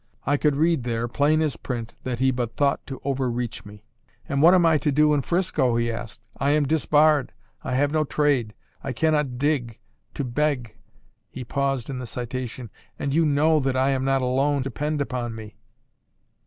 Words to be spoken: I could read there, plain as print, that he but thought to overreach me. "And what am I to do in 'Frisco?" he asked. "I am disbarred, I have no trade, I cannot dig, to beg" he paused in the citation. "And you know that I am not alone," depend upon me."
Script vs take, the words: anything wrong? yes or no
no